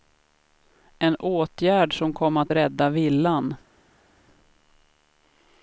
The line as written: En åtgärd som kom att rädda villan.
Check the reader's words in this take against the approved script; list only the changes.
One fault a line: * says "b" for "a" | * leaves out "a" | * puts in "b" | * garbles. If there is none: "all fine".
all fine